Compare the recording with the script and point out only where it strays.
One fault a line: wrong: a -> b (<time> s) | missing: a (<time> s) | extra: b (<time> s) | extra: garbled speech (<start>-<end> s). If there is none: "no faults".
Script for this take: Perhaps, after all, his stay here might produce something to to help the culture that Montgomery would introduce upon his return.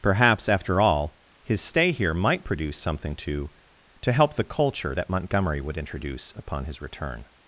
no faults